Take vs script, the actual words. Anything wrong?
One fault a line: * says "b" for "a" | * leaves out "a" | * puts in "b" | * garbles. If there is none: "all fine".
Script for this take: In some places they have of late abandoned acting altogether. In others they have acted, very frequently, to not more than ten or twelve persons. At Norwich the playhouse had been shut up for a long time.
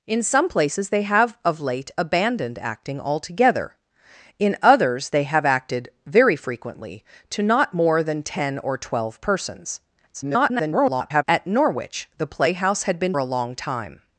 * garbles
* leaves out "shut up for"